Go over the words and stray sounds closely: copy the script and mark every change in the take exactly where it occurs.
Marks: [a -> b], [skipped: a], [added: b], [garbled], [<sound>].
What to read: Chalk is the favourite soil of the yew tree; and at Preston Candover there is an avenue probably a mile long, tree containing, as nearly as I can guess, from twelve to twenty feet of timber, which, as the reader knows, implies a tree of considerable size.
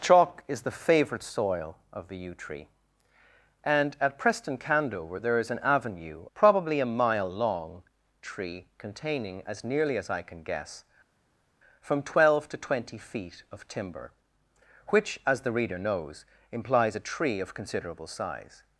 Chalk is the favourite soil of the yew tree; and at Preston Candover there is an avenue probably a mile long, tree containing, as nearly as I can guess, from twelve to twenty feet of timber, which, as the reader knows, implies a tree of considerable size.